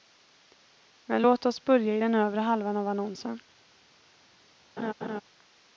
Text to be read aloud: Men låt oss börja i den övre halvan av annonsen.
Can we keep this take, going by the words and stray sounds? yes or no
no